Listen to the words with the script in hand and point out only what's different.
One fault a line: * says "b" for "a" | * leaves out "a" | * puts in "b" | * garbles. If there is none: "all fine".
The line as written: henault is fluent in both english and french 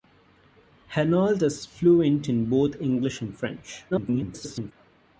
* garbles